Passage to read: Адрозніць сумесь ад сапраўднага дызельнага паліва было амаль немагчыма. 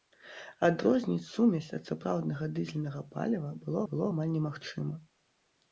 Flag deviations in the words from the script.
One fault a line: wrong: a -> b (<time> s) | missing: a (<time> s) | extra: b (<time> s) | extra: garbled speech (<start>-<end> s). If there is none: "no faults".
extra: было (3.9 s)